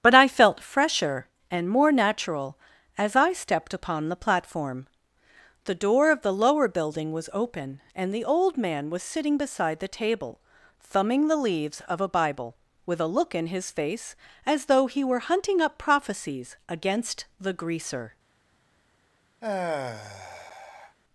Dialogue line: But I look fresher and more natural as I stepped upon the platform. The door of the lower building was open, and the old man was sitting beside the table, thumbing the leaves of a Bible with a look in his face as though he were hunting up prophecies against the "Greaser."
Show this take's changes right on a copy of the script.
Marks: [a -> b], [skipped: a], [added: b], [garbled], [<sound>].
But I [look -> felt] fresher and more natural as I stepped upon the platform. The door of the lower building was open, and the old man was sitting beside the table, thumbing the leaves of a Bible with a look in his face as though he were hunting up prophecies against the "Greaser." [sigh]